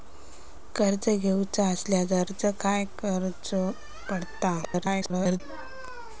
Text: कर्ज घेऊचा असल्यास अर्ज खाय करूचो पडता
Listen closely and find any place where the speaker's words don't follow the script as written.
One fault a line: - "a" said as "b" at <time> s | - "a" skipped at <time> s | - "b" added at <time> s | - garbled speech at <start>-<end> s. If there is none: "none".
- garbled speech at 4.6-5.4 s